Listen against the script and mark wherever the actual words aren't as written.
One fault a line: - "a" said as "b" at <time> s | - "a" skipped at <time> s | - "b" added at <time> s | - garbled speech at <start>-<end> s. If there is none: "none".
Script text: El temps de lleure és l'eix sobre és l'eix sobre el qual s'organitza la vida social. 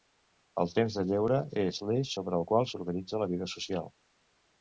- "és l'eix sobre" skipped at 2.4 s